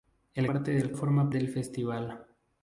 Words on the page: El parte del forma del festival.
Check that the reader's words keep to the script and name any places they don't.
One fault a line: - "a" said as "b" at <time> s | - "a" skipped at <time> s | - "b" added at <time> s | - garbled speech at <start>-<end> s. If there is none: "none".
none